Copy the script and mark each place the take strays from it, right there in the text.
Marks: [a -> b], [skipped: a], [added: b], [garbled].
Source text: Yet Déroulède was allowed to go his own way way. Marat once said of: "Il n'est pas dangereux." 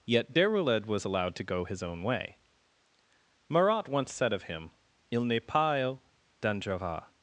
Yet Déroulède was allowed to go his own way [skipped: way.] Marat once said of: [added: him] "Il n'est pas dangereux."